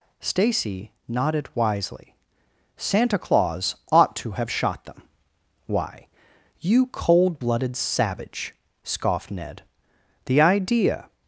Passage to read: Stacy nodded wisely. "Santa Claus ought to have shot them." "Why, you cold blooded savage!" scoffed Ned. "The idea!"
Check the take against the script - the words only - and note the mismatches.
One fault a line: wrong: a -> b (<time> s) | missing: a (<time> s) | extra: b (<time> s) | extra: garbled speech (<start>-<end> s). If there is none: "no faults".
no faults